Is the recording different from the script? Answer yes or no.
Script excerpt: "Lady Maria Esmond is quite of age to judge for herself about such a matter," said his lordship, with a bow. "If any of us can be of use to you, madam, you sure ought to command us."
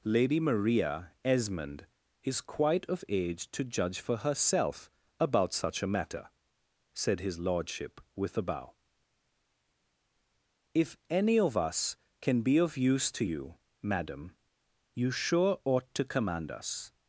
no